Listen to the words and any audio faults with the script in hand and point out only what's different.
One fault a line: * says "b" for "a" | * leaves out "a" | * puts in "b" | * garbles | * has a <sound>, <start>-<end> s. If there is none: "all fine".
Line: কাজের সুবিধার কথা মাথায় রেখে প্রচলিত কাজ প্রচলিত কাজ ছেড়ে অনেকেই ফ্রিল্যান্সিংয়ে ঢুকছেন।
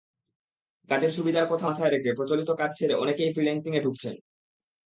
* leaves out "প্রচলিত কাজ"